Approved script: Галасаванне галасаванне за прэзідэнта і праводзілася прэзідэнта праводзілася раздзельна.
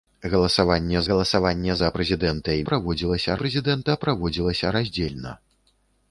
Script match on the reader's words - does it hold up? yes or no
yes